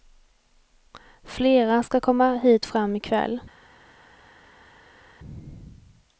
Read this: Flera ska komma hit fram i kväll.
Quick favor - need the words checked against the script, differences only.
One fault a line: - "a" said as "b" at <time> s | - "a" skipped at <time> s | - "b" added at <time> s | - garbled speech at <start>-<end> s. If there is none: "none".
none